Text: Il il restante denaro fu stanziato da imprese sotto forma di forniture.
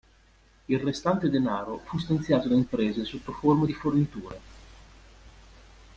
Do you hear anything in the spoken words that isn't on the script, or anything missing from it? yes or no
yes